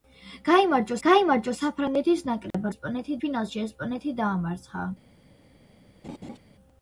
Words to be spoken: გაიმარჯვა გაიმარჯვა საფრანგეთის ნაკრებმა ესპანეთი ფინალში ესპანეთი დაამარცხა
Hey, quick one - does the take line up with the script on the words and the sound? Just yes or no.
no